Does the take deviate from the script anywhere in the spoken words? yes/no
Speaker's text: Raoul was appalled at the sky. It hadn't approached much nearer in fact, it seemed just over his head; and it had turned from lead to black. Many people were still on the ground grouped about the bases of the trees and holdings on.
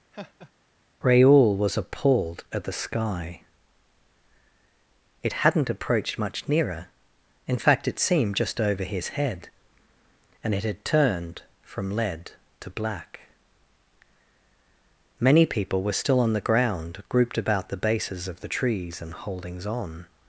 no